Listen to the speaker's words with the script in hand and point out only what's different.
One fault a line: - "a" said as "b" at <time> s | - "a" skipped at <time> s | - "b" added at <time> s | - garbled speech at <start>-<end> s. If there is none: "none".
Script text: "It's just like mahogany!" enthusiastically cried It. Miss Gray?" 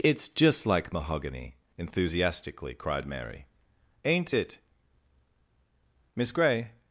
- "Mary ain't" added at 3.0 s